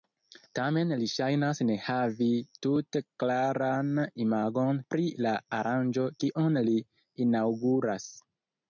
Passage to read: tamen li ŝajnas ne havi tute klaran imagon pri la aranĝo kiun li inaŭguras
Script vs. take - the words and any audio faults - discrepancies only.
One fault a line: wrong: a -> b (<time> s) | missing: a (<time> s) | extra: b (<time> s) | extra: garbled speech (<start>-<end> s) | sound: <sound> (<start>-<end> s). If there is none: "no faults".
no faults